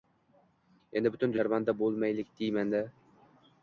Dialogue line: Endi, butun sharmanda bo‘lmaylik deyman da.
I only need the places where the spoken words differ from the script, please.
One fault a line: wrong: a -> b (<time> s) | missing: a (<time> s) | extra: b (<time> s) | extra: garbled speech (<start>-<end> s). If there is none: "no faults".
no faults